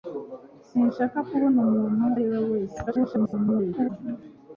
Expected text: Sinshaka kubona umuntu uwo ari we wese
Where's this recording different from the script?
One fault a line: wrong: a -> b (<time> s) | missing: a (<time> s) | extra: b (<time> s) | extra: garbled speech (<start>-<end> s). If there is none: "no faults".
missing: uwo (2.0 s)
extra: garbled speech (2.9-3.9 s)